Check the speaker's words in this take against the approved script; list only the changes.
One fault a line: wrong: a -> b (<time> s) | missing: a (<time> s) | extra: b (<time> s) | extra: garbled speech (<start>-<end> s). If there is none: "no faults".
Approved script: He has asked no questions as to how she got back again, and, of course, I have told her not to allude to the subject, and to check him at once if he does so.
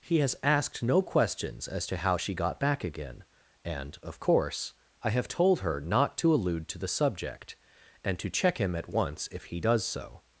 no faults